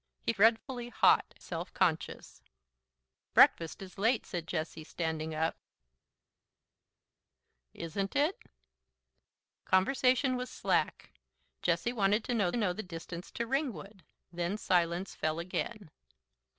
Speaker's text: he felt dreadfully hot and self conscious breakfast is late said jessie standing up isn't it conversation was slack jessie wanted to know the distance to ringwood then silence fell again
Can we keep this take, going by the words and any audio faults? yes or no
no